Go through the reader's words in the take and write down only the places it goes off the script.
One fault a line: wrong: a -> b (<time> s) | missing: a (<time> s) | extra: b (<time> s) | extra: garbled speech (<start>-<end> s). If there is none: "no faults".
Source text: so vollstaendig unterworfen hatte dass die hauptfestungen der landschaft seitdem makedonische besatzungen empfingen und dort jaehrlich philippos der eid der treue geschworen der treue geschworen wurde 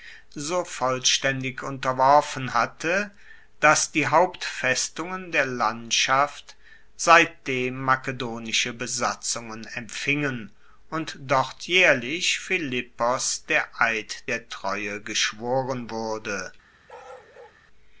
missing: der treue geschworen (15.9 s)